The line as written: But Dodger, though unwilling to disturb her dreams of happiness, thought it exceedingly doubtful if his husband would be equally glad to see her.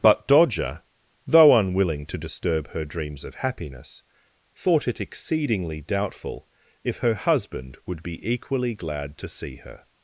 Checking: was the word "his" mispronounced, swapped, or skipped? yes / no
yes